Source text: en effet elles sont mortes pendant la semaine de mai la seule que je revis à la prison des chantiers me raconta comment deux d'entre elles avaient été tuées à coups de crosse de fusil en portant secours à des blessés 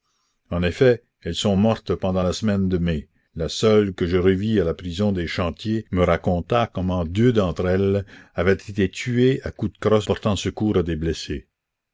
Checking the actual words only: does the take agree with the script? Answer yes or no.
no